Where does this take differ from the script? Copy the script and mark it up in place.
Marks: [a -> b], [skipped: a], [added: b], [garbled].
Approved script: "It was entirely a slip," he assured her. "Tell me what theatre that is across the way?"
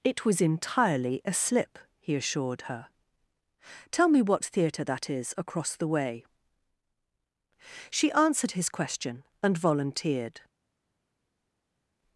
"It was entirely a slip," he assured her. "Tell me what theatre that is across the way?" [added: She answered his question and volunteered]